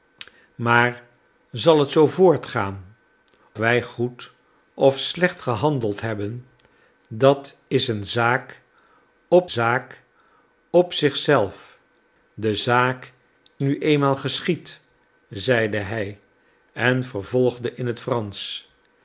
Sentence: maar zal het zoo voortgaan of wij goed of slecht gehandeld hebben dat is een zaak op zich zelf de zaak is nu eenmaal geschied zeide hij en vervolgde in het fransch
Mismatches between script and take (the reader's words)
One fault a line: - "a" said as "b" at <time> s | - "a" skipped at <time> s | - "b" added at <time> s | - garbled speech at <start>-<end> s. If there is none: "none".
- "of" skipped at 3.0 s
- "zaak op" added at 9.5 s
- "is" skipped at 13.1 s